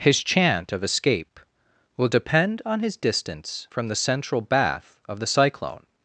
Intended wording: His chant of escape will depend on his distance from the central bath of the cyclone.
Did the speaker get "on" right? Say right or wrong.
right